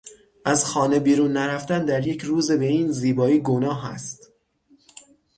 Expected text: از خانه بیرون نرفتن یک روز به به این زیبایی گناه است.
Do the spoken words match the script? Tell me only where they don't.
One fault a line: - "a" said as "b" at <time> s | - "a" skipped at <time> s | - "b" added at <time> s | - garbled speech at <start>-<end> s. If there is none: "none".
- "در" added at 1.9 s
- "به" skipped at 2.7 s